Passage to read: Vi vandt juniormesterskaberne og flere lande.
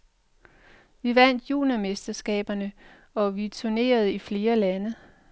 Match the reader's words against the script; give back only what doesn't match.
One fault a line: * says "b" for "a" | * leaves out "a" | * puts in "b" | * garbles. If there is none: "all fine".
* puts in "vi turnerede i"